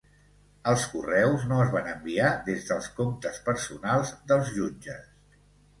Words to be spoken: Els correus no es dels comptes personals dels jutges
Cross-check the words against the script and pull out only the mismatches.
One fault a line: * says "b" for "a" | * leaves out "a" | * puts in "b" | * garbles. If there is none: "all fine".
* puts in "van enviar des"